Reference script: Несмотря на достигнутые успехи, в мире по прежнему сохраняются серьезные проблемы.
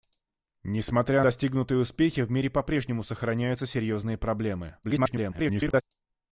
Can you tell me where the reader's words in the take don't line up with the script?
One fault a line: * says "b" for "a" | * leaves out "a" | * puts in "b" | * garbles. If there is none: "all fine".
* leaves out "на"
* garbles